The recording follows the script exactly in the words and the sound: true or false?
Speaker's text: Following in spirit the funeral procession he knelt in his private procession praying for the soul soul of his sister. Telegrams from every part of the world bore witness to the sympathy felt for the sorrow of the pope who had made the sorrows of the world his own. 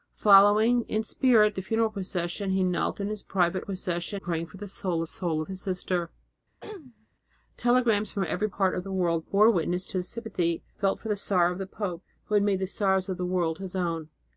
false